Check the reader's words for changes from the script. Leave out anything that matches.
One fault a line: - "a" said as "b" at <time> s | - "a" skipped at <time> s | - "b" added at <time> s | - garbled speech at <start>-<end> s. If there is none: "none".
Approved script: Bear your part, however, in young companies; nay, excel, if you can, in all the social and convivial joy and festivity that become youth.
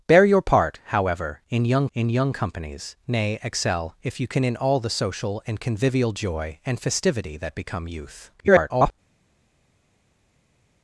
- "in young" added at 1.9 s
- garbled speech at 8.4-8.9 s